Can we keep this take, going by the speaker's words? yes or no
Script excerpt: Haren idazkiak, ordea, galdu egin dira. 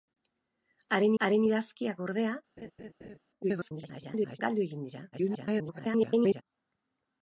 no